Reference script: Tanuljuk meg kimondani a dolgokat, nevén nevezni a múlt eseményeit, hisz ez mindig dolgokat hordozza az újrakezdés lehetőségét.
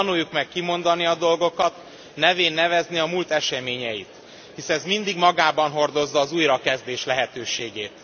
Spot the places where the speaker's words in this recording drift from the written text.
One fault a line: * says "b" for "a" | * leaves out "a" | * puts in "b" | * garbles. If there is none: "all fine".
* says "magában" for "dolgokat"